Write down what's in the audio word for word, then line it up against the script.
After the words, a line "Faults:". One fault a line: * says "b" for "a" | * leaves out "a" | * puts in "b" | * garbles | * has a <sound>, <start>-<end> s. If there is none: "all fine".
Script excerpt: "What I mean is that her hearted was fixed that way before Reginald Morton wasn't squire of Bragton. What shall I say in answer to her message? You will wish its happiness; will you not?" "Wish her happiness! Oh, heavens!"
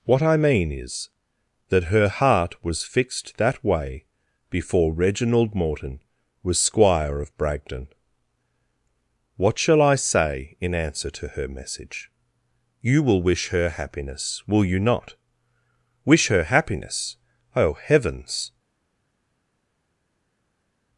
"What I mean is that her heart was fixed that way before Reginald Morton was squire of Bragton. What shall I say in answer to her message? You will wish her happiness; will you not?" "Wish her happiness! Oh, heavens!"
Faults:
* says "heart" for "hearted"
* says "was" for "wasn't"
* says "her" for "its"